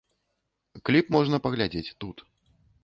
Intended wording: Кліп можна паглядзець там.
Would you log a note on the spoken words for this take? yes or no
yes